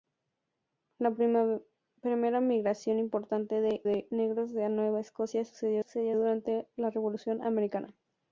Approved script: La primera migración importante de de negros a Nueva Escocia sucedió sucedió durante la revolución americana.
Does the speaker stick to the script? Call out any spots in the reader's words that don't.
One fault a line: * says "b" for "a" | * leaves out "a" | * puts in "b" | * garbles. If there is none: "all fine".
all fine